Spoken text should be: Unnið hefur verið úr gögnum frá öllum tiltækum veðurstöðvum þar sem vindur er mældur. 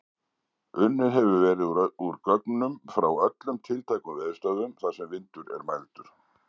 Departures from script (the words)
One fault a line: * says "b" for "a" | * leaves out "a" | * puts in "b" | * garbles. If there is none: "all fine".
all fine